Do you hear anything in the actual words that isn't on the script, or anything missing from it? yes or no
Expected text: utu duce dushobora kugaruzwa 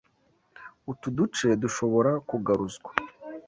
no